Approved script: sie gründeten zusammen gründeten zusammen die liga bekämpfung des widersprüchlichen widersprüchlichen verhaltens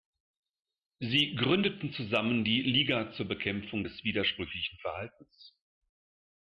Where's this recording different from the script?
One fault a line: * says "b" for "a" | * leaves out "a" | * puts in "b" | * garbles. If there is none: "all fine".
* leaves out "gründeten zusammen"
* puts in "zur"
* leaves out "widersprüchlichen"